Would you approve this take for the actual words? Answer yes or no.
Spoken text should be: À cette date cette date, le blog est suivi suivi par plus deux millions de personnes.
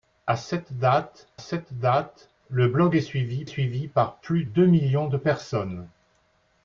yes